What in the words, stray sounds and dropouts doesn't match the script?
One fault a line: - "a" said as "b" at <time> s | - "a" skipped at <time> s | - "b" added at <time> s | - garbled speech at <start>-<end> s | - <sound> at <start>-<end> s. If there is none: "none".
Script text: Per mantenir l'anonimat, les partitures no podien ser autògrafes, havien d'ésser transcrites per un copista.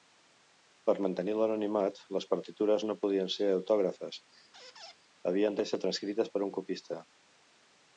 - squeak at 4.5-5.0 s